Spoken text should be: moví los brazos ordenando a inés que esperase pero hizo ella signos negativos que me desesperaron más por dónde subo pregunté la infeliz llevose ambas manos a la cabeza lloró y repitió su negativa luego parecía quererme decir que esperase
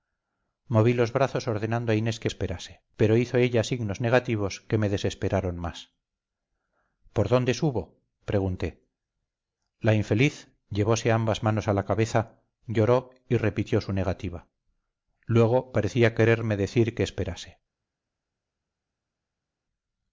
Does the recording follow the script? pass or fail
pass